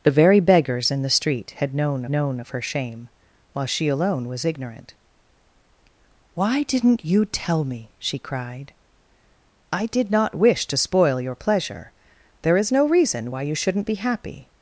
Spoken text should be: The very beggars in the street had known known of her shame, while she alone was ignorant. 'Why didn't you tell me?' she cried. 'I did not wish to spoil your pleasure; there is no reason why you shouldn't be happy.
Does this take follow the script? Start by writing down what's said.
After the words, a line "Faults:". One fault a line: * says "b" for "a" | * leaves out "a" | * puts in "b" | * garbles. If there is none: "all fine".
The very beggars in the street had known known of her shame, while she alone was ignorant. 'Why didn't you tell me?' she cried. 'I did not wish to spoil your pleasure; there is no reason why you shouldn't be happy.
Faults:
all fine